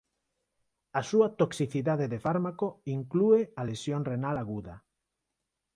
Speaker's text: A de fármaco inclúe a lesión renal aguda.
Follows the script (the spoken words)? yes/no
no